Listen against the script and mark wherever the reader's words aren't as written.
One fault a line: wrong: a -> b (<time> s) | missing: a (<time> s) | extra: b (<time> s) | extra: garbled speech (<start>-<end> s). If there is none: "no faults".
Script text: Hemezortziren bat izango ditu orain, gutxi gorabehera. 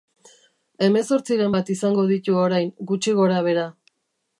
no faults